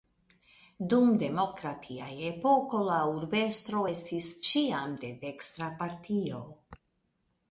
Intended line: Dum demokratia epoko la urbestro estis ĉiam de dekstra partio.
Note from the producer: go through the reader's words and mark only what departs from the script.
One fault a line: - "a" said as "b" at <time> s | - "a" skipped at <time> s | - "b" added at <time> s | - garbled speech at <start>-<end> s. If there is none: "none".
none